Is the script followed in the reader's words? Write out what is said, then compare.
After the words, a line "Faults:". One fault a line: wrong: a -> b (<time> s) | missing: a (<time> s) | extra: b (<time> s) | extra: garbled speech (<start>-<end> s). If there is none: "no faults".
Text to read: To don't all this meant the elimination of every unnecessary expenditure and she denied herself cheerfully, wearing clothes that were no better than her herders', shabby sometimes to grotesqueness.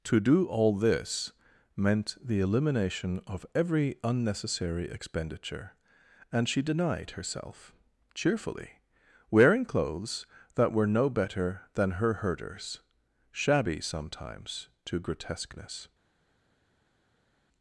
To do all this meant the elimination of every unnecessary expenditure and she denied herself cheerfully, wearing clothes that were no better than her herders', shabby sometimes to grotesqueness.
Faults:
wrong: don't -> do (0.2 s)